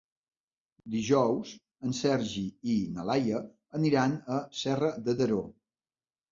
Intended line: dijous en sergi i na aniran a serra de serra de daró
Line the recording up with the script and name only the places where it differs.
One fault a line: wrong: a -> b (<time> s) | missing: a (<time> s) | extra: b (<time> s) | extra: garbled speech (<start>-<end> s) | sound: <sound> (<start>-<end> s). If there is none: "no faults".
extra: laia (3.1 s)
missing: serra de (5.2 s)